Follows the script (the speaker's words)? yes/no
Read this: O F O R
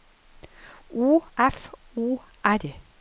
yes